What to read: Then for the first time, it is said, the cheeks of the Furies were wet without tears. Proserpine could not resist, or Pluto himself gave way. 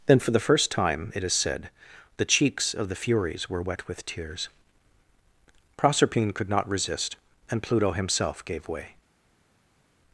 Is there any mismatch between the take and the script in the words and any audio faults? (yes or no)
yes